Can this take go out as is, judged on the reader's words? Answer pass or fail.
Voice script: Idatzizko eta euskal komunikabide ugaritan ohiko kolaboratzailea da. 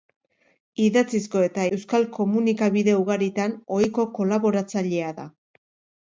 pass